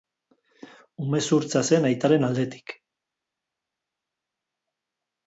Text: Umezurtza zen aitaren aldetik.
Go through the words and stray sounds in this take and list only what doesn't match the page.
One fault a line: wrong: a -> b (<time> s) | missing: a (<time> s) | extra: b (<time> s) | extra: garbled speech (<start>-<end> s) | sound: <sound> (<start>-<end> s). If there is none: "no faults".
no faults